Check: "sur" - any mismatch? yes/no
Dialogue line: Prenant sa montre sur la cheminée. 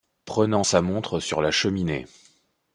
no